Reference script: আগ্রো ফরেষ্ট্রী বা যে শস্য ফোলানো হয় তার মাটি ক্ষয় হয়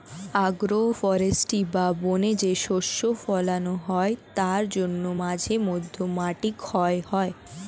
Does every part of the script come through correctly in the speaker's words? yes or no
no